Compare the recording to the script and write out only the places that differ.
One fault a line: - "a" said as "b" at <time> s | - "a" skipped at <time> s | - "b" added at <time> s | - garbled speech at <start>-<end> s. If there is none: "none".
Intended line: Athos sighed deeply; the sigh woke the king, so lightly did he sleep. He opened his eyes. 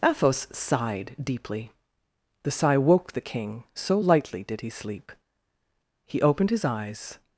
none